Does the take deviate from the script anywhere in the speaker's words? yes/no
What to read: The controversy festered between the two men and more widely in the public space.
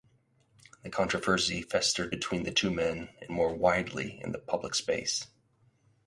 no